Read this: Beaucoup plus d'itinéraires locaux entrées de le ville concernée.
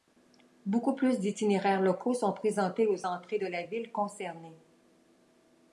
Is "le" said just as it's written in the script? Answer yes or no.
no